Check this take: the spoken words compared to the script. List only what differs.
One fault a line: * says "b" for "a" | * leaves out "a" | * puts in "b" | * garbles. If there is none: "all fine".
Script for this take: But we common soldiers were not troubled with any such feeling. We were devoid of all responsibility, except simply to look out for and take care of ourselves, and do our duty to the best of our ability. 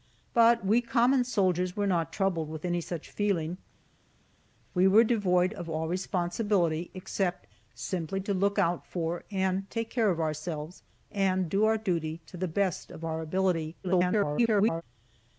* garbles